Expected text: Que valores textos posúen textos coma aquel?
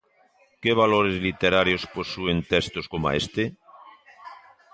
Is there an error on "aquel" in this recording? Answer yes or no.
yes